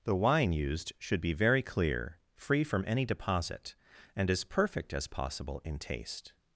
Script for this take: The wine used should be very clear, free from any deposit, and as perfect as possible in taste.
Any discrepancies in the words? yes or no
no